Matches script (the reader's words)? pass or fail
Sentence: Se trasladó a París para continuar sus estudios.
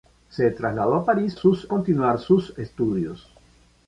fail